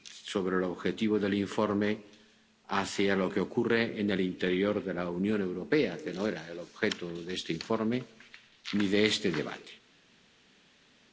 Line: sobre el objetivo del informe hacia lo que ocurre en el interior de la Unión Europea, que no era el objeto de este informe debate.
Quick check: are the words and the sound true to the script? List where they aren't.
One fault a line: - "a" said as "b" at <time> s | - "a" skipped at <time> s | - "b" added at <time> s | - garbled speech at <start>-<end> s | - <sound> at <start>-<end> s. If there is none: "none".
- "ni de este" added at 8.7 s